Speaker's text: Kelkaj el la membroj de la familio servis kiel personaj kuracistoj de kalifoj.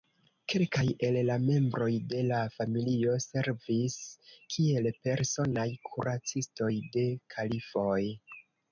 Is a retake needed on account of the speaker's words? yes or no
no